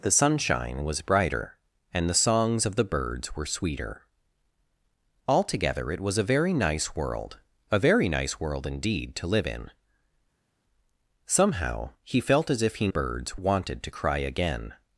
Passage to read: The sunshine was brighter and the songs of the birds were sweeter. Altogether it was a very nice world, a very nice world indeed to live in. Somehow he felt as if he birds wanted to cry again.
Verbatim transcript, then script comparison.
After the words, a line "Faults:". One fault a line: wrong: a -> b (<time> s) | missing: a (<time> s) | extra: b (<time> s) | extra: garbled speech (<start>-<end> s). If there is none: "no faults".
The sunshine was brighter and the songs of the birds were sweeter. Altogether it was a very nice world, a very nice world indeed to live in. Somehow he felt as if he birds wanted to cry again.
Faults:
no faults